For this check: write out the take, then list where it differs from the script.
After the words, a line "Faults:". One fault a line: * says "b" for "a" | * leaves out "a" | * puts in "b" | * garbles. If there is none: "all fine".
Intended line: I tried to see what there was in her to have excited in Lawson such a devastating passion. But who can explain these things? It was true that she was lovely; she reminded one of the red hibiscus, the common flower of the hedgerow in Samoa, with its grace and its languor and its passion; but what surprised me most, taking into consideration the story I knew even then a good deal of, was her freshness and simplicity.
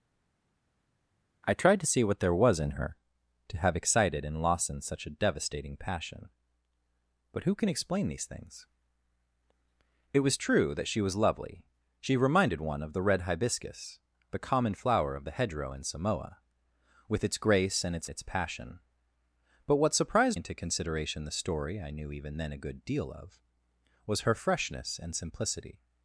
I tried to see what there was in her to have excited in Lawson such a devastating passion. But who can explain these things? It was true that she was lovely; she reminded one of the red hibiscus, the common flower of the hedgerow in Samoa, with its grace and its its passion; but what surprised into consideration the story I knew even then a good deal of, was her freshness and simplicity.
Faults:
* leaves out "languor and"
* leaves out "me most taking"